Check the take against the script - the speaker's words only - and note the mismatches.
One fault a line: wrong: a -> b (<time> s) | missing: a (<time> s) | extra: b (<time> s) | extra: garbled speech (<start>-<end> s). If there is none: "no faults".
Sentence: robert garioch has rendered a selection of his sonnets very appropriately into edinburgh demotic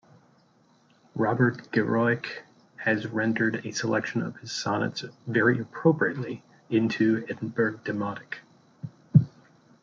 no faults